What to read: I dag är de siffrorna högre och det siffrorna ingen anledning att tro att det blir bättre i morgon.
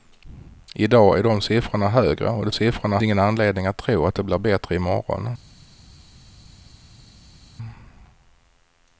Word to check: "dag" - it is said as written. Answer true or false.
true